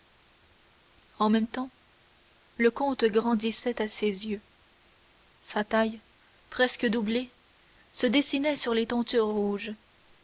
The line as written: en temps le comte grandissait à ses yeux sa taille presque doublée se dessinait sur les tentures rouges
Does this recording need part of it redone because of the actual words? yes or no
yes